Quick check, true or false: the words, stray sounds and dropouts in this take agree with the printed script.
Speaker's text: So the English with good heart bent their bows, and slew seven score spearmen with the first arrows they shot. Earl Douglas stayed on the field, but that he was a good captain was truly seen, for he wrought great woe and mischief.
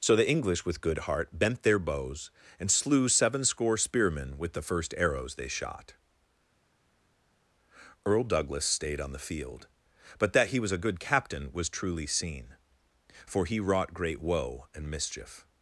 true